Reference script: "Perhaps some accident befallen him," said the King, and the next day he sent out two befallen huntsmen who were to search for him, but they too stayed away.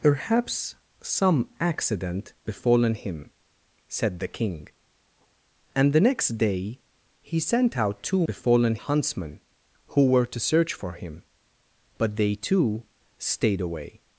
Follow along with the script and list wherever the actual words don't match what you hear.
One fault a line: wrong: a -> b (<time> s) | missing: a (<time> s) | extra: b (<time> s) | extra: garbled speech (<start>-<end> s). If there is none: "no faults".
no faults